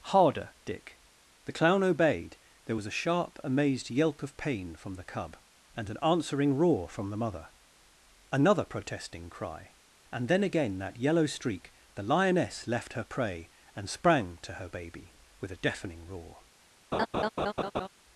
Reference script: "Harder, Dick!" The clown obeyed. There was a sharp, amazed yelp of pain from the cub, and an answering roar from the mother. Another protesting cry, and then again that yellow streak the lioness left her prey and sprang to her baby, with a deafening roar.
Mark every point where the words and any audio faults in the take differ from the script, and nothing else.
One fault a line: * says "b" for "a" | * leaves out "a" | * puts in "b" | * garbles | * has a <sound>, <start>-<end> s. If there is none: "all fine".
* has a laugh, 16.9-17.9 s